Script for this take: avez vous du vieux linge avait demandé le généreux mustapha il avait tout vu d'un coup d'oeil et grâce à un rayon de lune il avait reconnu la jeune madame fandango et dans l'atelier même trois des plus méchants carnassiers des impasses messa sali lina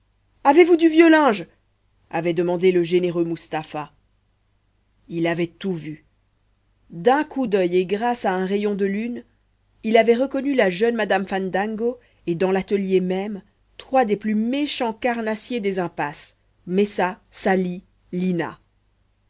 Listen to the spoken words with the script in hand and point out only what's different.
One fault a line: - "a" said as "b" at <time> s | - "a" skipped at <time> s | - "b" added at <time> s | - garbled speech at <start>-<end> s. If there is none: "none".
none